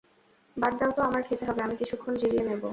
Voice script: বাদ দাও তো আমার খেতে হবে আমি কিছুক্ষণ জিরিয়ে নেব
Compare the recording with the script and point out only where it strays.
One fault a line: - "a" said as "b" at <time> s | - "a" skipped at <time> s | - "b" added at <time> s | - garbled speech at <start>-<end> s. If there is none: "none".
none